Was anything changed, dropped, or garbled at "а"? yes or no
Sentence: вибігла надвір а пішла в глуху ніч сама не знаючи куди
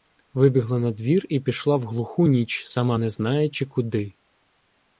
yes